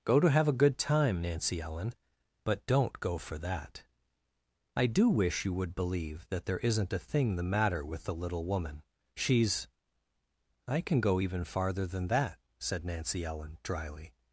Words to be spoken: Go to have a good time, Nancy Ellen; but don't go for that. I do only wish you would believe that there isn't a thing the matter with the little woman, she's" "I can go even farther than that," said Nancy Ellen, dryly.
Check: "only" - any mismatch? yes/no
yes